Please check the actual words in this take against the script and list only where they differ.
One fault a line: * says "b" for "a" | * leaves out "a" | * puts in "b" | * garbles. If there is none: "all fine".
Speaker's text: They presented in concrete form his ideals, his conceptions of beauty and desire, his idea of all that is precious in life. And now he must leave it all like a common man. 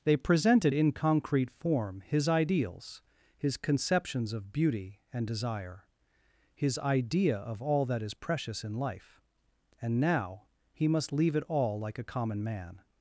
all fine